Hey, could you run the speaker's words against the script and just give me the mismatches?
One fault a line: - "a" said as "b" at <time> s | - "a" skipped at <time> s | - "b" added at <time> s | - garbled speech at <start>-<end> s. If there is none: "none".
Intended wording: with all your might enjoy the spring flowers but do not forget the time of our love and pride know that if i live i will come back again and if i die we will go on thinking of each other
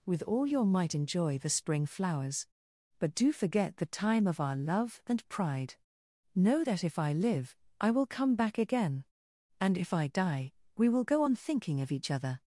- "not" skipped at 3.3 s